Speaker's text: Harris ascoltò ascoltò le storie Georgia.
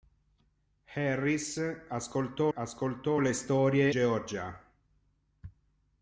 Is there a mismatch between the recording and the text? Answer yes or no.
no